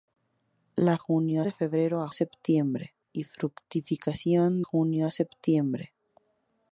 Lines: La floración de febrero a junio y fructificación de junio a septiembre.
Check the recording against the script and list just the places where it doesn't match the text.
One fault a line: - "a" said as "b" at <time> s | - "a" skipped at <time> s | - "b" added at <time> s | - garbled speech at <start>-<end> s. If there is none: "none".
- "floración" said as "junio" at 1.0 s
- "junio" said as "septiembre" at 2.1 s
- "de" skipped at 4.6 s